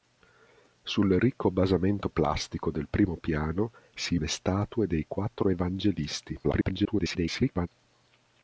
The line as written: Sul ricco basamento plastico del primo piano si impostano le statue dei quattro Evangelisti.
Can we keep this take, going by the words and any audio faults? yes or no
no